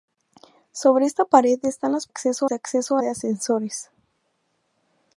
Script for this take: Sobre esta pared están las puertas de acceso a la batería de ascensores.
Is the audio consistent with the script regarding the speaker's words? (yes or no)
no